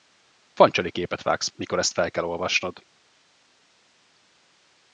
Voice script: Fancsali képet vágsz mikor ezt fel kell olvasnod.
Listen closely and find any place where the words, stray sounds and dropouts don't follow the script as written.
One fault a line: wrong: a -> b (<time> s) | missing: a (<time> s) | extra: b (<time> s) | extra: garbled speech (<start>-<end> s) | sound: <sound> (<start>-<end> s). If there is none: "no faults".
no faults